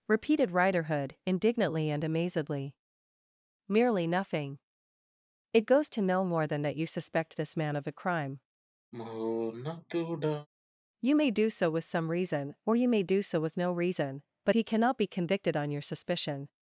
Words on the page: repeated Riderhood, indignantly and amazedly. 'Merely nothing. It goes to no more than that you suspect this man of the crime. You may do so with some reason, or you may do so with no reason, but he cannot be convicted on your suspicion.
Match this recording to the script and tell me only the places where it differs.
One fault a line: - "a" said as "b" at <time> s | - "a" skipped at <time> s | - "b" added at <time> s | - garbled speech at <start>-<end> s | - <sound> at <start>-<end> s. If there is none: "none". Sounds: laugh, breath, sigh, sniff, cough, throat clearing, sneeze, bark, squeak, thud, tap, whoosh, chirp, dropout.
- "the" said as "a" at 7.9 s
- sigh at 8.9-10.5 s